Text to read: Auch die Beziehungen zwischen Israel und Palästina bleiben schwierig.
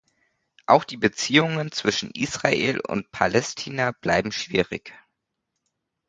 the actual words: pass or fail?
pass